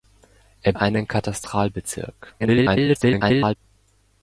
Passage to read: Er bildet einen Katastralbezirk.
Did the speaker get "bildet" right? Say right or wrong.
wrong